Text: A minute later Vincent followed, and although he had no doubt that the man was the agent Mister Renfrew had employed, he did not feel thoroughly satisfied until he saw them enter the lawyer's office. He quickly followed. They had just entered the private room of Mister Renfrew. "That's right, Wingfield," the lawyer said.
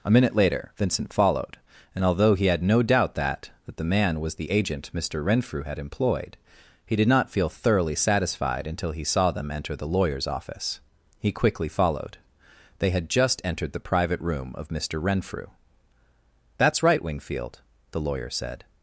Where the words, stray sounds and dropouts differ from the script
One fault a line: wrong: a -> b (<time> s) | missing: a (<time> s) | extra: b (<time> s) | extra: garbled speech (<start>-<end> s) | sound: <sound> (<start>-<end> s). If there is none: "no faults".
extra: that (3.6 s)